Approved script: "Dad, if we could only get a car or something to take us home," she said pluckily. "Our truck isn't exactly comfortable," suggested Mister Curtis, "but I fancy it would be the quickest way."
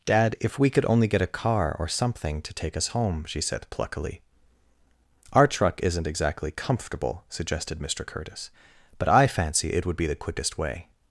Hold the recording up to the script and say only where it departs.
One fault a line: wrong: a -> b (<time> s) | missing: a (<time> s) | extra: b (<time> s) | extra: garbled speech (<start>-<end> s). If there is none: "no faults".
no faults